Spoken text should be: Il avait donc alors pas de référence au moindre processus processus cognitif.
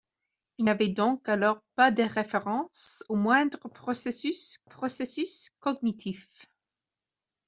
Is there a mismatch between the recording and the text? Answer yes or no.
no